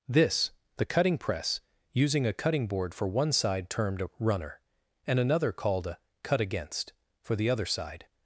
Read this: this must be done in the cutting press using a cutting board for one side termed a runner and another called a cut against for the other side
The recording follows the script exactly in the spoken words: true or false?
false